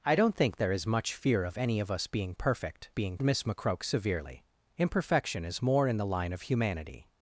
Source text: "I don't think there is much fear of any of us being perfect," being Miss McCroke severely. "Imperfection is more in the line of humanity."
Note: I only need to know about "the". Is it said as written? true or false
true